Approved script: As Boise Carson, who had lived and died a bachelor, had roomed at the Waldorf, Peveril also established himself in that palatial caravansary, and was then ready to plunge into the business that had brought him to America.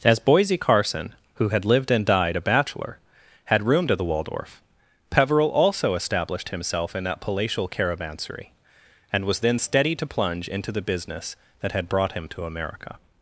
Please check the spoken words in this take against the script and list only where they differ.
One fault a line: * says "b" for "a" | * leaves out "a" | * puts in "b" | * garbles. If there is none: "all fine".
* says "steady" for "ready"